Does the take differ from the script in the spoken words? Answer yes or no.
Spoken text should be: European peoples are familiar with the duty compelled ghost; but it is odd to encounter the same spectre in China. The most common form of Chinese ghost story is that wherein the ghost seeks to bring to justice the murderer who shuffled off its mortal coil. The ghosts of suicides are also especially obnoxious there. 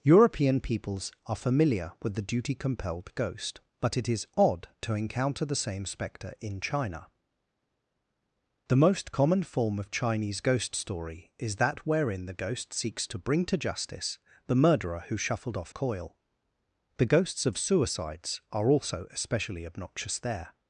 yes